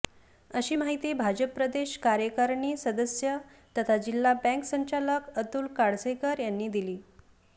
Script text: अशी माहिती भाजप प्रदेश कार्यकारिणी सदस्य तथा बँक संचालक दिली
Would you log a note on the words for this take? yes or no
yes